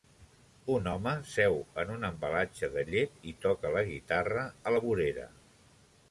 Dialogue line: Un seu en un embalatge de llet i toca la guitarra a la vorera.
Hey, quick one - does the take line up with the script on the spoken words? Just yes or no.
no